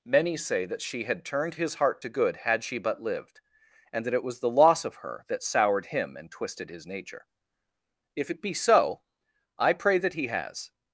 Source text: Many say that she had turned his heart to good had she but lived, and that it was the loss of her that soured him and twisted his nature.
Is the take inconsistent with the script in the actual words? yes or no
yes